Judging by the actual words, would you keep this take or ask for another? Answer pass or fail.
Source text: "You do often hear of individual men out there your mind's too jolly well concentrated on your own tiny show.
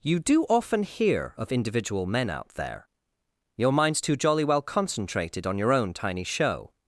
pass